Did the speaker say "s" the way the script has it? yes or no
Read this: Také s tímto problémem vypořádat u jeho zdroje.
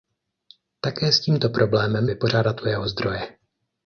yes